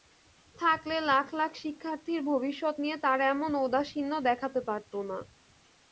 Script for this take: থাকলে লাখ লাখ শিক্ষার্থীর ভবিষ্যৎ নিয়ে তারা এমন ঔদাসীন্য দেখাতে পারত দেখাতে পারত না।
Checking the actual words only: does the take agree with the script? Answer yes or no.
no